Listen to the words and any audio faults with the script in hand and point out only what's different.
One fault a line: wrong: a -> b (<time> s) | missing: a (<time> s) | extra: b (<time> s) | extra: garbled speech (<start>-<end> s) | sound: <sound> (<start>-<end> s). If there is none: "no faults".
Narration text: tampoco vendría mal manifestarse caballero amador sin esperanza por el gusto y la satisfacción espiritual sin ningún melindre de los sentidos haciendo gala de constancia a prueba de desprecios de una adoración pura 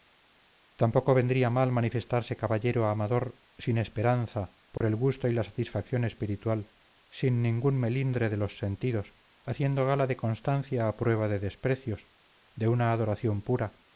sound: dropout (4.8-4.8 s)